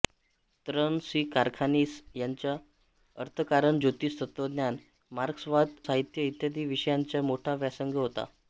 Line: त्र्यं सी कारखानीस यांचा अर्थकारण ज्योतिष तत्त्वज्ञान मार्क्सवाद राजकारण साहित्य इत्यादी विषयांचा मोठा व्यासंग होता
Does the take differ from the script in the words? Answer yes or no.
yes